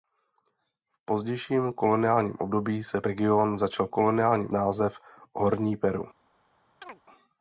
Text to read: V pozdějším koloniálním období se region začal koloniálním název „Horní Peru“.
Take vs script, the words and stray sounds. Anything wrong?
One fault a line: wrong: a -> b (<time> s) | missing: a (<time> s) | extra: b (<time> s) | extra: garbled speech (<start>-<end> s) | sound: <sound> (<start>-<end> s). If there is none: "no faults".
sound: chirp (6.8-7.0 s)